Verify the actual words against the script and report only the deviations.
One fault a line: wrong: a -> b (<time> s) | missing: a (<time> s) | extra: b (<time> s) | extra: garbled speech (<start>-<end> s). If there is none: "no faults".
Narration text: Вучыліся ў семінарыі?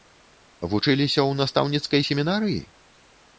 extra: настаўніцкай (1.4 s)